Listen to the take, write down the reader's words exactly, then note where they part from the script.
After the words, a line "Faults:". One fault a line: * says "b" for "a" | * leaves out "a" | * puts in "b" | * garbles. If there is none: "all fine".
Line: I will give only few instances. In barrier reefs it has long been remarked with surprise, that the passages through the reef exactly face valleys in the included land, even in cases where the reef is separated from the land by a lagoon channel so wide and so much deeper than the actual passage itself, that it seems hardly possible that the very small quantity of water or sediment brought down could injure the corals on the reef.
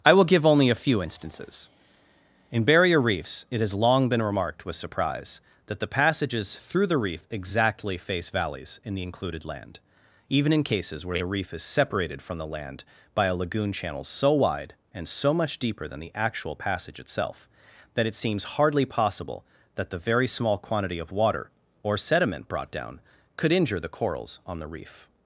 I will give only a few instances. In barrier reefs it has long been remarked with surprise, that the passages through the reef exactly face valleys in the included land, even in cases where the reef is separated from the land by a lagoon channel so wide and so much deeper than the actual passage itself, that it seems hardly possible that the very small quantity of water or sediment brought down could injure the corals on the reef.
Faults:
* puts in "a"